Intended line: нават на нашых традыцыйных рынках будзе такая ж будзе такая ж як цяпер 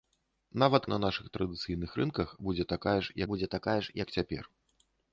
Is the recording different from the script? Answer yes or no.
no